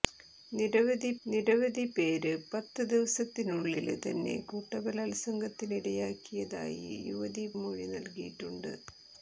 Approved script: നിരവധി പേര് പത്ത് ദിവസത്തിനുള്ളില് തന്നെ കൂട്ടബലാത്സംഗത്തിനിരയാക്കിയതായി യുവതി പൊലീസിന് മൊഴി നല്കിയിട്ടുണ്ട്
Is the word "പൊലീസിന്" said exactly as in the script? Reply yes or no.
no